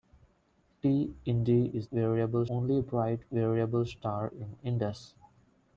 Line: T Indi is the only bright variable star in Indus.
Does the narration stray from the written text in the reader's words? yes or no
yes